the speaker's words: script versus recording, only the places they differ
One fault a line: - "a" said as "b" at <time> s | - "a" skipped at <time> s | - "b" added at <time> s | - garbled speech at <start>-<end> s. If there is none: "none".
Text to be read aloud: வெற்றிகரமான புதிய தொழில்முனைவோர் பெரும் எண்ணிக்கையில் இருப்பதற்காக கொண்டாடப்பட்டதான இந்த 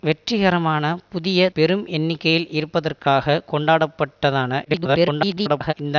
- "தொழில்முனைவோர்" skipped at 1.5 s
- garbled speech at 4.6-5.7 s